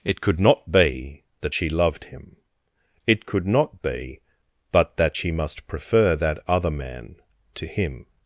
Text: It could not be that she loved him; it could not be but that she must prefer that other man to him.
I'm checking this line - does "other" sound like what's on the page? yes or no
yes